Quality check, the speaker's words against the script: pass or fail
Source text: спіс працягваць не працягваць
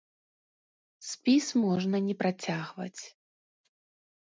fail